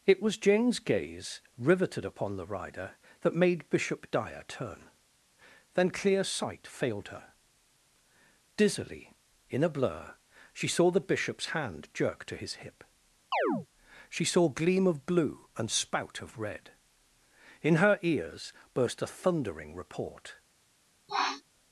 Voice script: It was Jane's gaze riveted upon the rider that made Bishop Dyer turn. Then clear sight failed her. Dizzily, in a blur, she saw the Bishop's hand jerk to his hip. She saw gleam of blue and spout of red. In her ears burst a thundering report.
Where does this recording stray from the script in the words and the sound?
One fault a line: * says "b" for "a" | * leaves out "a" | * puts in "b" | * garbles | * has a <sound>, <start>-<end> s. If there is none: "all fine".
* has a chirp, 13.3-13.7 s
* has a sniff, 21.1-21.4 s